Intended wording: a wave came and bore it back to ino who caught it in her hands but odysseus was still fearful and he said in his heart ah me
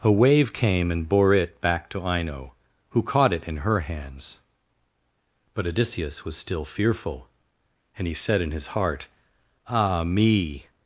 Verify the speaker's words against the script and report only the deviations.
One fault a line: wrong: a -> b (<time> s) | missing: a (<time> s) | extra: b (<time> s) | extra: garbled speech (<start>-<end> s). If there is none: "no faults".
no faults